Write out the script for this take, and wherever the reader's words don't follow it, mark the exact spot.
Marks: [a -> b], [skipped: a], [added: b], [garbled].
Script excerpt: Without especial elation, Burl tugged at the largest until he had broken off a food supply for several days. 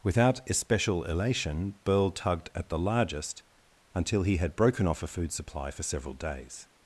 Without especial elation, Burl tugged at the largest until he had broken off a food supply for several days.